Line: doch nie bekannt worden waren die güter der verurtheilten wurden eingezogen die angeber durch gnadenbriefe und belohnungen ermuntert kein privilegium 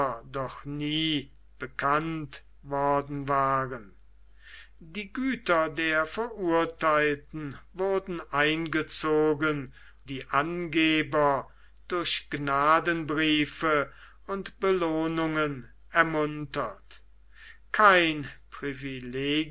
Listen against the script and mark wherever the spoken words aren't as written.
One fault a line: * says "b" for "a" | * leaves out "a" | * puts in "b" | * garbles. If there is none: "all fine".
all fine